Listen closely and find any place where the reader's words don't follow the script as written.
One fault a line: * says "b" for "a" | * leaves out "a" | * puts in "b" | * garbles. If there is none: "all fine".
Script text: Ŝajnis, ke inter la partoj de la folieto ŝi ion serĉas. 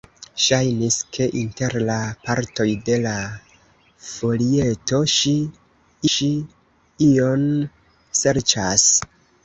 * puts in "ŝi"